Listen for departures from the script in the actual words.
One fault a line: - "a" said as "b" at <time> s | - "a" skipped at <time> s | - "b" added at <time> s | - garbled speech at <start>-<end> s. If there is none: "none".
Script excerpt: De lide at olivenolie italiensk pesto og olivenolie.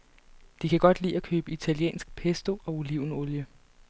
- "kan godt" added at 0.7 s
- "olivenolie" said as "købe" at 1.2 s